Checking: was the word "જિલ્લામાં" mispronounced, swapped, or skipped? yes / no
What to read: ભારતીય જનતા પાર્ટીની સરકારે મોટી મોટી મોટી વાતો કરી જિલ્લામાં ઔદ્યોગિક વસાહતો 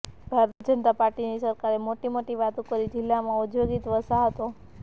no